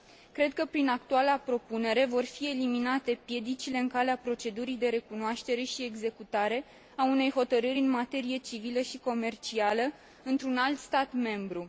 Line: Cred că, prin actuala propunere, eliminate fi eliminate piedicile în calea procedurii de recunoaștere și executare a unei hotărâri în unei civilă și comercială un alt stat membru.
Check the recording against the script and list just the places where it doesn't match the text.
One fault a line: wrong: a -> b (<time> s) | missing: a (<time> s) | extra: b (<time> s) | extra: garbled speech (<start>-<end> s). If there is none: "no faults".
wrong: eliminate -> vor (2.0 s)
wrong: unei -> materie (7.9 s)
extra: într (10.2 s)